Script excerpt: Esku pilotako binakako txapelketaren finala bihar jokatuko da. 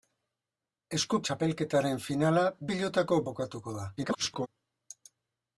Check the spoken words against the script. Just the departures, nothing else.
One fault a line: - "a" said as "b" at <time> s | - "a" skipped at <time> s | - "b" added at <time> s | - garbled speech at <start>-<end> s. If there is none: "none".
- "pilotako binakako" skipped at 1.2 s
- "bihar" said as "pilotako" at 2.7 s
- garbled speech at 4.0-4.5 s